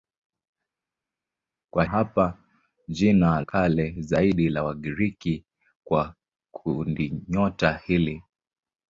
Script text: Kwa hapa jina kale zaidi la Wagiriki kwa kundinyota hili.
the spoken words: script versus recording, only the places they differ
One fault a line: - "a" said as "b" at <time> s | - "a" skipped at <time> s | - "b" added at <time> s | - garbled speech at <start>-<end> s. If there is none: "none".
none